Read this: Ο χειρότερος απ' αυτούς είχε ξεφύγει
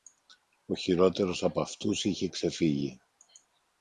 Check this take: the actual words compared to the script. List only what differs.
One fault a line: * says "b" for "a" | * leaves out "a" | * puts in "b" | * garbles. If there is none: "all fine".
all fine